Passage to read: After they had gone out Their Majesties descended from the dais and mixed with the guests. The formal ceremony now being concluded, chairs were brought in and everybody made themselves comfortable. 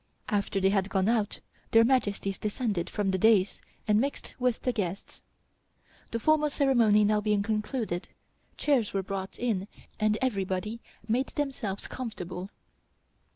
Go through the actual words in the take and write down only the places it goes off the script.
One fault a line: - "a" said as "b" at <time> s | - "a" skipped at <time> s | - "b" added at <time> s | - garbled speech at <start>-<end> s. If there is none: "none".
none